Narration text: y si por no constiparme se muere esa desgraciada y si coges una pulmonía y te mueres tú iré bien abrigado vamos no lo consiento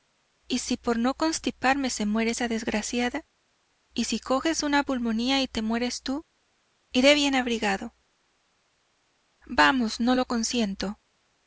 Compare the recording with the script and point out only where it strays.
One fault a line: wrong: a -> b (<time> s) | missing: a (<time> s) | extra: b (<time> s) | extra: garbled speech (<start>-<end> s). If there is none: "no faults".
no faults